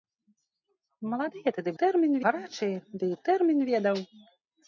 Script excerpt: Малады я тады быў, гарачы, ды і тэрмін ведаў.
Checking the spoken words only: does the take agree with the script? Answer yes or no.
no